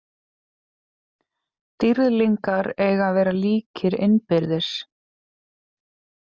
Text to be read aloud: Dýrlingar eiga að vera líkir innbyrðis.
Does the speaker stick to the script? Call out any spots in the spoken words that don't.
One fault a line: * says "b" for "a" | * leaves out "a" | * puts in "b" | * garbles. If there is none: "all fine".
all fine